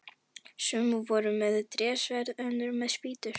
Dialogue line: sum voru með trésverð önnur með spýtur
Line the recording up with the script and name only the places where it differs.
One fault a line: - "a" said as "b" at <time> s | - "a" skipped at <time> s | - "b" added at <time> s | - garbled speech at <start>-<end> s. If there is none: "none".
none